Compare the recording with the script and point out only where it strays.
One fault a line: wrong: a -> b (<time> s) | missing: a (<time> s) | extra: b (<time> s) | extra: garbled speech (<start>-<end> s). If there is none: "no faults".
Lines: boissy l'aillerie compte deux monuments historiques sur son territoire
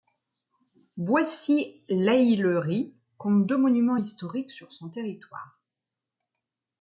no faults